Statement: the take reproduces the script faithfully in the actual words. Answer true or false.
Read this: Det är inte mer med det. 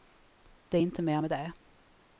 true